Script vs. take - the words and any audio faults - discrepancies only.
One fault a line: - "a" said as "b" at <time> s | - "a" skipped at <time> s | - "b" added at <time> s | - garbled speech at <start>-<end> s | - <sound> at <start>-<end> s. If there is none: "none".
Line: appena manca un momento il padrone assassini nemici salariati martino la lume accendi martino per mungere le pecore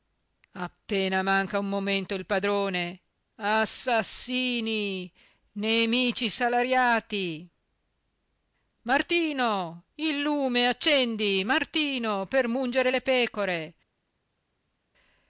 - "la" said as "il" at 9.9 s